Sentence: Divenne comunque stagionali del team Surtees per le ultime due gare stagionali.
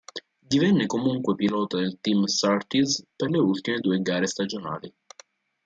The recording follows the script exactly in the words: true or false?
false